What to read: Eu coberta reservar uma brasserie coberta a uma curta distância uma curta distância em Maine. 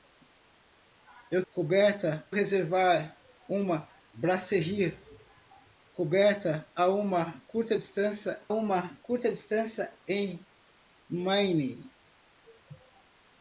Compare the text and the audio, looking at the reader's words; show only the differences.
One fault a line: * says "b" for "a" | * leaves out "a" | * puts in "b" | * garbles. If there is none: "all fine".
all fine